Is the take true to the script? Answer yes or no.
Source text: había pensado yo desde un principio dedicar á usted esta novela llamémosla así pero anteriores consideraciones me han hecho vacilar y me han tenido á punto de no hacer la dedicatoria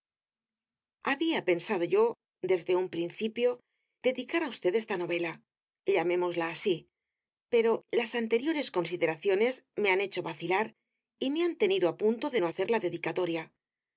no